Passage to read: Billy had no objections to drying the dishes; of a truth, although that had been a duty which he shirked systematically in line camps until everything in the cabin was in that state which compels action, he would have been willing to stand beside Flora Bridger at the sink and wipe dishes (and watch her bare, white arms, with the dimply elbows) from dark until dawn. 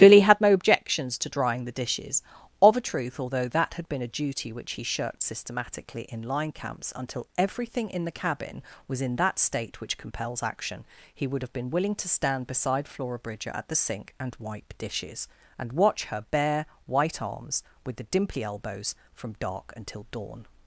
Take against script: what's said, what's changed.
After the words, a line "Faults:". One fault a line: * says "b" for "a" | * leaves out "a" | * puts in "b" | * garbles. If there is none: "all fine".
Billy had no objections to drying the dishes; of a truth, although that had been a duty which he shirked systematically in line camps until everything in the cabin was in that state which compels action, he would have been willing to stand beside Flora Bridger at the sink and wipe dishes (and watch her bare, white arms, with the dimply elbows) from dark until dawn.
Faults:
all fine